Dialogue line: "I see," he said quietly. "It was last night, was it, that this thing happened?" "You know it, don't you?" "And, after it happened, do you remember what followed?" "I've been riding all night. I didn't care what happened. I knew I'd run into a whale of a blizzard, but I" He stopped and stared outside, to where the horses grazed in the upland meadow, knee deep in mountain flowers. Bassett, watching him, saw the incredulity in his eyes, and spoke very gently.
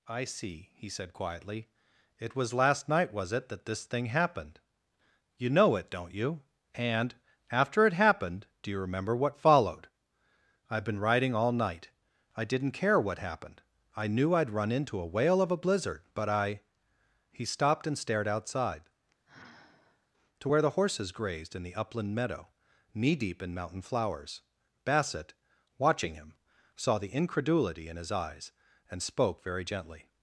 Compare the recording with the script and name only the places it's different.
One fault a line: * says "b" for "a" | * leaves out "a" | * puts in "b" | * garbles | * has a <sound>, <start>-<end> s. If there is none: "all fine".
* has a sigh, 19.3-20.1 s